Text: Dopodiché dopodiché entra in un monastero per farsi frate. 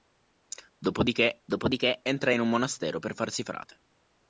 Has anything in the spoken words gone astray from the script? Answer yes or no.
no